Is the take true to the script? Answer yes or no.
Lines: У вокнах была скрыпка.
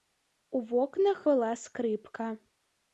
yes